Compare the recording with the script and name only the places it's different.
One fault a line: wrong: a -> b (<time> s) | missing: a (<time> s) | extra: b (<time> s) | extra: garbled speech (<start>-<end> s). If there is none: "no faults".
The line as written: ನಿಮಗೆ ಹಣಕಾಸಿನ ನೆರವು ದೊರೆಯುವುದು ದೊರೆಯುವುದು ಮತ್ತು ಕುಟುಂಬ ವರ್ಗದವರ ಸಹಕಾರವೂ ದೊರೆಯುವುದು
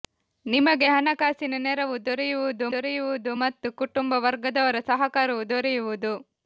no faults